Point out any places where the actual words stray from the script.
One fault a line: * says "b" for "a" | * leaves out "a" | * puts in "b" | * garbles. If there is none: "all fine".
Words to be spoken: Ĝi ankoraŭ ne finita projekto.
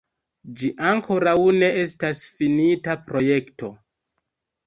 * puts in "estas"